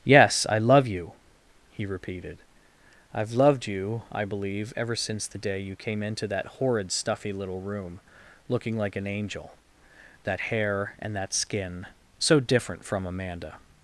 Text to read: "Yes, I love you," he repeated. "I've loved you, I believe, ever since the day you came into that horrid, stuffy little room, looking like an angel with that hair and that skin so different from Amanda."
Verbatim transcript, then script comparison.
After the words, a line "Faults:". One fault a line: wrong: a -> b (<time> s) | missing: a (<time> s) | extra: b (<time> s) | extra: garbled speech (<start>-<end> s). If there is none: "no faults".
"Yes, I love you," he repeated. "I've loved you, I believe, ever since the day you came into that horrid, stuffy little room, looking like an angel that hair and that skin so different from Amanda."
Faults:
missing: with (9.6 s)